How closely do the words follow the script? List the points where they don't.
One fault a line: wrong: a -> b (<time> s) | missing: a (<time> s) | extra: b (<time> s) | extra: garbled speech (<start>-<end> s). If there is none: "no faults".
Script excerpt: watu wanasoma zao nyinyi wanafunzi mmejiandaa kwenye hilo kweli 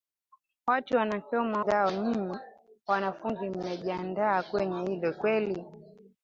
no faults